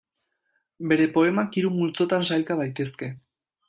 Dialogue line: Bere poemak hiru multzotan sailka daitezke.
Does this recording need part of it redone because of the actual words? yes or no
no